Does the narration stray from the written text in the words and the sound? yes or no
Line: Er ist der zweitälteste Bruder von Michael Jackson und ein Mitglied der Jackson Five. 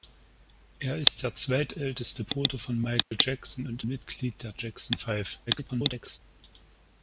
yes